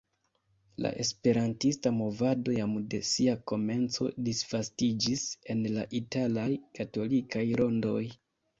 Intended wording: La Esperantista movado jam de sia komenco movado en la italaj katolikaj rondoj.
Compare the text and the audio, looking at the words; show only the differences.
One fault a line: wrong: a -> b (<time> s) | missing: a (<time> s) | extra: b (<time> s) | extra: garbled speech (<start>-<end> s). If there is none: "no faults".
wrong: movado -> disvastiĝis (4.3 s)